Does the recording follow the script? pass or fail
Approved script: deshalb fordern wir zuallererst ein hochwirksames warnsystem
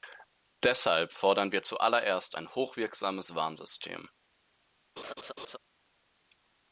pass